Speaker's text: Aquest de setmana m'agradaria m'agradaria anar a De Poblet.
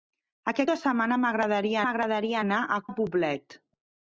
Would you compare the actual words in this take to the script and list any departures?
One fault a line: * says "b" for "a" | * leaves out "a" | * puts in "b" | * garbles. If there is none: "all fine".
all fine